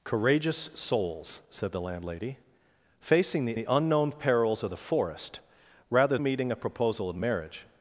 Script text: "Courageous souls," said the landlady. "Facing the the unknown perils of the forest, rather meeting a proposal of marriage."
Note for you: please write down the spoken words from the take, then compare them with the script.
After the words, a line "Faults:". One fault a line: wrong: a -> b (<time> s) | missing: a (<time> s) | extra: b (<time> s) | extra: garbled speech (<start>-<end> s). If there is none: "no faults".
"Courageous souls," said the landlady. "Facing the the unknown perils of the forest, rather meeting a proposal of marriage."
Faults:
no faults